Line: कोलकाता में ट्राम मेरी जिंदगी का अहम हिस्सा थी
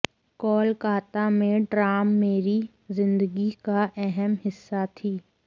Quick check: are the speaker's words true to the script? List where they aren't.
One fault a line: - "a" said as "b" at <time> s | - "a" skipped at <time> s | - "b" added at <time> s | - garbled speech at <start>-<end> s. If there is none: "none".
none